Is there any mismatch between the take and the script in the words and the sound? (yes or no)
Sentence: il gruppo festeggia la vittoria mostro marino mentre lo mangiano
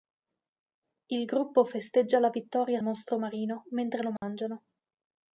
yes